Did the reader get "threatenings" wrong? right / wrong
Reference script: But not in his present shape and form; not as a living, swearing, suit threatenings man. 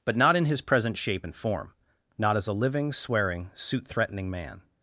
wrong